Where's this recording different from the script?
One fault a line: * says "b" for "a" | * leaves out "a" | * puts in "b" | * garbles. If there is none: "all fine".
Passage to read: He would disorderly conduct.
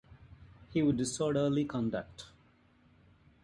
all fine